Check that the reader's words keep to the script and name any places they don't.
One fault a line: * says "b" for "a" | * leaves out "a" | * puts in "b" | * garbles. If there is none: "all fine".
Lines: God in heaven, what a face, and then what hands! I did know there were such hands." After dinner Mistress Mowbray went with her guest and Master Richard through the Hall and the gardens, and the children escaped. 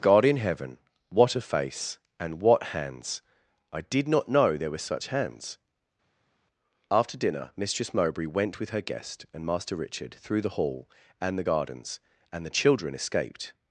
* leaves out "then"
* puts in "not"